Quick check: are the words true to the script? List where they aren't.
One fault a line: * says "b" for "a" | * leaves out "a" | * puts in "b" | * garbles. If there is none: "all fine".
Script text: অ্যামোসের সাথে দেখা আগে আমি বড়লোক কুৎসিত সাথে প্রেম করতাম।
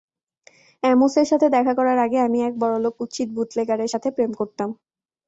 * puts in "করার"
* puts in "এক"
* puts in "বুটলেগারের"